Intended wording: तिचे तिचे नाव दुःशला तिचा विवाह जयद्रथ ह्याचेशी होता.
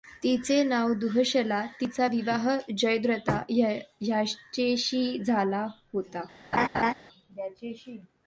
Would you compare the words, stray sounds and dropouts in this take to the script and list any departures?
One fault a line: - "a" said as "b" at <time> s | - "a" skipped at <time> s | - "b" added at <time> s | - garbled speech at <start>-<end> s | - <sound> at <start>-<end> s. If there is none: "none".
- "तिचे" skipped at 0.6 s
- "झाला" added at 5.2 s
- laugh at 6.5-6.9 s